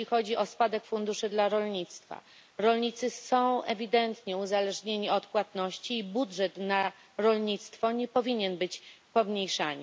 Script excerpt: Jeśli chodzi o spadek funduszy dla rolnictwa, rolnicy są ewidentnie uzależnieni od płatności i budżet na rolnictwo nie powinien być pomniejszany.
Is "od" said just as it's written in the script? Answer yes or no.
yes